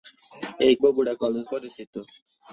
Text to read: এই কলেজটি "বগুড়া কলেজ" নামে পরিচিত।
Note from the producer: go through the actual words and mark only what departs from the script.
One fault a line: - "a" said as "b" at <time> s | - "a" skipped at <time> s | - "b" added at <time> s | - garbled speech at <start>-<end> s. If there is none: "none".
- "কলেজটি" skipped at 0.8 s
- "নামে" skipped at 1.4 s